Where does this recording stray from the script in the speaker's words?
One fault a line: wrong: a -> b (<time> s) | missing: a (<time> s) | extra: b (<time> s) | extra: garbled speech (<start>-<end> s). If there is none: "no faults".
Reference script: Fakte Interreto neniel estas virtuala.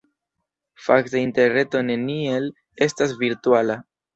no faults